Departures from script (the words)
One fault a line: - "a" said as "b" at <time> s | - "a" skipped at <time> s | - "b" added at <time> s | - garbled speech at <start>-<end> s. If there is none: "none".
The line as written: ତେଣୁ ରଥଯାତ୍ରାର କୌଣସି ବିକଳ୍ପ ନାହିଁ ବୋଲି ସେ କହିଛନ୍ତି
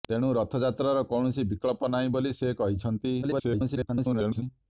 - garbled speech at 3.2-4.4 s